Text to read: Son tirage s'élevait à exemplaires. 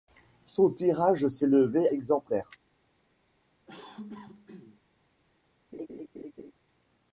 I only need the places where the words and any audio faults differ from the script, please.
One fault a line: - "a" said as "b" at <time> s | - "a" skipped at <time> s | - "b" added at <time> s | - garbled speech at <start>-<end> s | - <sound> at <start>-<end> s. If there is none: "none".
- "à" skipped at 1.9 s
- cough at 3.7-4.8 s
- laugh at 5.7-6.5 s